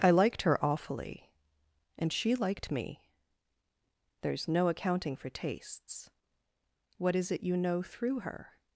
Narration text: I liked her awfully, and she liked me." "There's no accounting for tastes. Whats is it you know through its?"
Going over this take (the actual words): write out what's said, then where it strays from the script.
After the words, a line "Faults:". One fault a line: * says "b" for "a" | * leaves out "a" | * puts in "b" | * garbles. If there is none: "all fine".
I liked her awfully, and she liked me." "There's no accounting for tastes. What is it you know through her?"
Faults:
* says "What" for "Whats"
* says "her" for "its"